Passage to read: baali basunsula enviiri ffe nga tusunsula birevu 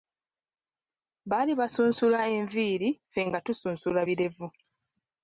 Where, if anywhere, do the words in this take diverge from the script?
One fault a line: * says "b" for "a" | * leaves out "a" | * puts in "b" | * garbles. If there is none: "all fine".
all fine